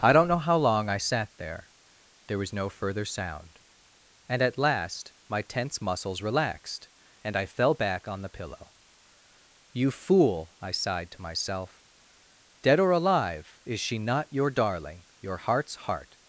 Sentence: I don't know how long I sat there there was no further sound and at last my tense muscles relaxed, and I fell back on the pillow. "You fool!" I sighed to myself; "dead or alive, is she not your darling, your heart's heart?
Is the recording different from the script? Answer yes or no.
no